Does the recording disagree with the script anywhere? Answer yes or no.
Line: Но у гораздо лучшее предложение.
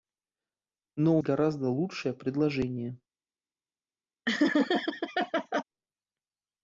no